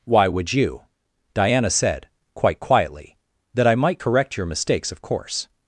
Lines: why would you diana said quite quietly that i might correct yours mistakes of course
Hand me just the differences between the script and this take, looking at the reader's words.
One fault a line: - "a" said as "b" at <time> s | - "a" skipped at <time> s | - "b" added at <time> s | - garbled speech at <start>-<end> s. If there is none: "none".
- "yours" said as "your" at 4.4 s